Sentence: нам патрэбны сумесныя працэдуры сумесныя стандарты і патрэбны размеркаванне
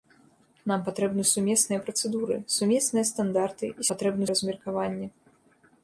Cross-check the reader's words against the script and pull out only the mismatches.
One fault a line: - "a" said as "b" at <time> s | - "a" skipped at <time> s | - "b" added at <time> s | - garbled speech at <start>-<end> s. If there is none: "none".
none